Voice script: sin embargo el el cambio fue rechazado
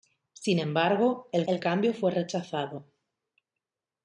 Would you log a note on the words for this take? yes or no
no